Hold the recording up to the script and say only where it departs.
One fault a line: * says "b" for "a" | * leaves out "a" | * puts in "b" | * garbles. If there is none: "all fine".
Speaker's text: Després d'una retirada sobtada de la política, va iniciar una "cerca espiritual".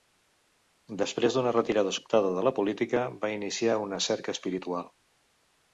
all fine